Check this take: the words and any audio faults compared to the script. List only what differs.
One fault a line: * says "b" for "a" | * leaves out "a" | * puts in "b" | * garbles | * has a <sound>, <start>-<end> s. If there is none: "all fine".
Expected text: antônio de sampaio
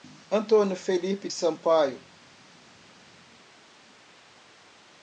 * puts in "felipe"